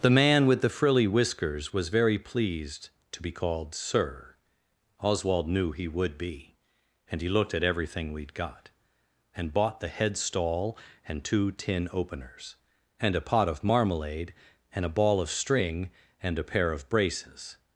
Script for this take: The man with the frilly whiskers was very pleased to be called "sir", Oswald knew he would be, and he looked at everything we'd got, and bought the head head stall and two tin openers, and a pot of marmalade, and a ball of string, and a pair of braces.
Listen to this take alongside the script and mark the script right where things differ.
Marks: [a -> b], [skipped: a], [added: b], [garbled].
The man with the frilly whiskers was very pleased to be called "sir", Oswald knew he would be, and he looked at everything we'd got, and bought the head [skipped: head] stall and two tin openers, and a pot of marmalade, and a ball of string, and a pair of braces.